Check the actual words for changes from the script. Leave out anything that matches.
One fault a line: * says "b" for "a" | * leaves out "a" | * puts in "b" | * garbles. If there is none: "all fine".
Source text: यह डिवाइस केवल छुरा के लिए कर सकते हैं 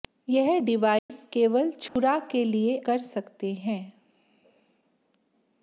all fine